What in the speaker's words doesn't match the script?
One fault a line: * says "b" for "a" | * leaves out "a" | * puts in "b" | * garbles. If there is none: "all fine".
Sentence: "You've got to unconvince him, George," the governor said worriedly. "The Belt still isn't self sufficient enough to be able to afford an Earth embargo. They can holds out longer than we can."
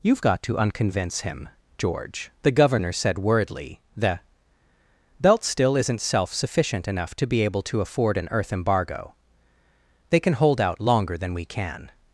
* says "hold" for "holds"